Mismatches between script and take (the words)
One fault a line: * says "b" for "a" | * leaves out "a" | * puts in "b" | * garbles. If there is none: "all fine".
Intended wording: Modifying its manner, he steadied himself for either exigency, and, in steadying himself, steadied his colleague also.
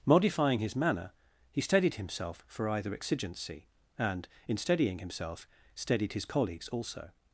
* says "his" for "its"
* says "colleagues" for "colleague"